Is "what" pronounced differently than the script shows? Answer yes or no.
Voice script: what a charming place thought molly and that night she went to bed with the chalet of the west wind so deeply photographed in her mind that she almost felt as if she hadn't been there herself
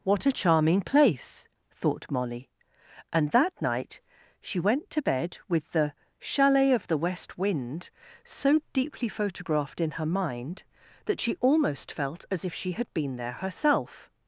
no